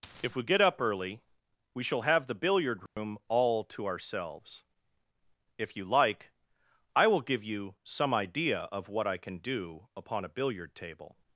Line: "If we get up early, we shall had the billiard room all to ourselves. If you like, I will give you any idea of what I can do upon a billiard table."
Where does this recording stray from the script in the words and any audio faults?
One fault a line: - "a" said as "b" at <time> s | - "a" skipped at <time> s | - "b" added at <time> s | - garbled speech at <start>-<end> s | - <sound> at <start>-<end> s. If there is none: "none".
- "had" said as "have" at 2.0 s
- dropout at 2.9-3.0 s
- "any" said as "some" at 7.8 s